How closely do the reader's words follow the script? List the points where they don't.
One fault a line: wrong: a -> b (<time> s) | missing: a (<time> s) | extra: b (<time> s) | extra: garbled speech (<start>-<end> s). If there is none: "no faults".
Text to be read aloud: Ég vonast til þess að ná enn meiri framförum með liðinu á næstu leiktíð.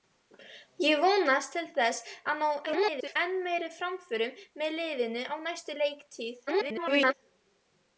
extra: garbled speech (2.7-3.2 s)
extra: garbled speech (6.5-7.1 s)